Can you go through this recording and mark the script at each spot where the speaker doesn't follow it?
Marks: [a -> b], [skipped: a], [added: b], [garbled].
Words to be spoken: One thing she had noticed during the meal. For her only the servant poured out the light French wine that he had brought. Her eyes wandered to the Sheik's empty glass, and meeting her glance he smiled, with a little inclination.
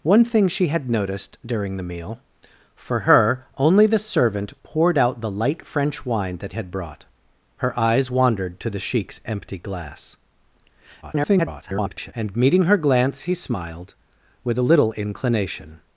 One thing she had noticed during the meal. For her only the servant poured out the light French wine that [skipped: he] had brought. Her eyes wandered to the Sheik's empty glass, [garbled] and meeting her glance he smiled, with a little inclination.